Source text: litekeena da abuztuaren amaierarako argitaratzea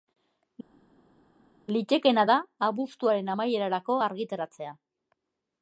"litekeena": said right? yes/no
yes